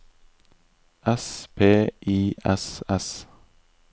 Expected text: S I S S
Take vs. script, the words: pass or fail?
fail